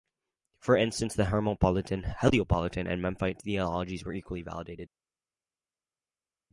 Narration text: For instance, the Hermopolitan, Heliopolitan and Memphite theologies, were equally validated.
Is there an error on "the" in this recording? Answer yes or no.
no